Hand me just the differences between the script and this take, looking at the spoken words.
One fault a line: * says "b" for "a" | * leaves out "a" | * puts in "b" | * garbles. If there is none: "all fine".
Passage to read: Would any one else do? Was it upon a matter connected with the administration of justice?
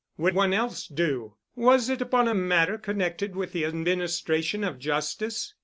* leaves out "any"